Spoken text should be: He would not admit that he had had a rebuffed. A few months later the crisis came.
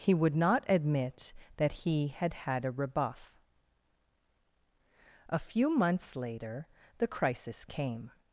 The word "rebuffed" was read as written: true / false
false